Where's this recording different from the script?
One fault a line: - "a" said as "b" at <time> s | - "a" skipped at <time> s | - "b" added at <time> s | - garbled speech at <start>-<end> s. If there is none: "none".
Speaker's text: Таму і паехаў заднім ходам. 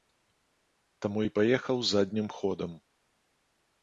none